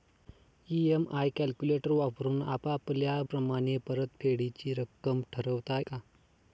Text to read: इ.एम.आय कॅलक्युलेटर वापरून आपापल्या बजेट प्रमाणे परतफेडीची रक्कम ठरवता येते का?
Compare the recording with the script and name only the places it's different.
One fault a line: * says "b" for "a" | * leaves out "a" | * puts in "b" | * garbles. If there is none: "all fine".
* leaves out "बजेट"
* leaves out "येते"